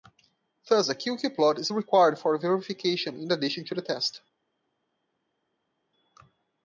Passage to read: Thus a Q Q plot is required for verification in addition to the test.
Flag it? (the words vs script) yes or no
no